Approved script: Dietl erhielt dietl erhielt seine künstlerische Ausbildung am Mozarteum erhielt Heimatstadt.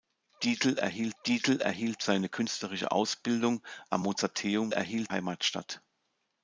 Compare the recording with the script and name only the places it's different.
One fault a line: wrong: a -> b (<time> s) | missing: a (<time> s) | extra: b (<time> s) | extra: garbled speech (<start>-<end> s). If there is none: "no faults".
no faults